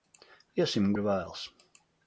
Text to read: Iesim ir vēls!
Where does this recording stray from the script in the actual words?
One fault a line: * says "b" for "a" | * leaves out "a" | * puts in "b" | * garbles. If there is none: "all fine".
all fine